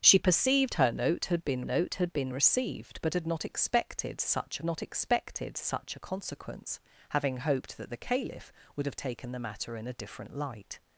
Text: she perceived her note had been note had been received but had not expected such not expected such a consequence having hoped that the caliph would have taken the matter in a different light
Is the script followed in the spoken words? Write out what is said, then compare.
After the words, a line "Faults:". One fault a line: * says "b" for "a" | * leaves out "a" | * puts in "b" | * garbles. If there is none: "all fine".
she perceived her note had been note had been received but had not expected such not expected such a consequence having hoped that the caliph would have taken the matter in a different light
Faults:
all fine